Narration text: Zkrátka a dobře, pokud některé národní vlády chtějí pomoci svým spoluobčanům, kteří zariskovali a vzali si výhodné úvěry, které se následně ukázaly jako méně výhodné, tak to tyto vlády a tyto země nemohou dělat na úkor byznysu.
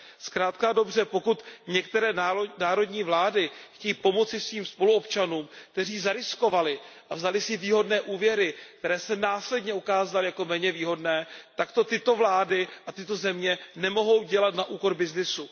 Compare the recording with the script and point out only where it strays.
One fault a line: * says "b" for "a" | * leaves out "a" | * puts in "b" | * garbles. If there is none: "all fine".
all fine